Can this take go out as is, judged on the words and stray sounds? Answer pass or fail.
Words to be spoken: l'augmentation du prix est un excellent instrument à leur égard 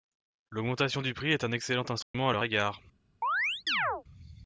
fail